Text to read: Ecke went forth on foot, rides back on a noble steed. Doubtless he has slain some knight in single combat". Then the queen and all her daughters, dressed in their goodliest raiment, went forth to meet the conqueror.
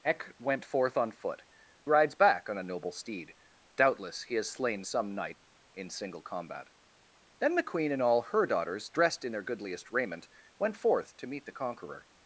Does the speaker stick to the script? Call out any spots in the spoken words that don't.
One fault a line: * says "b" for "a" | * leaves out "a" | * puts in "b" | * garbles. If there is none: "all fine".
all fine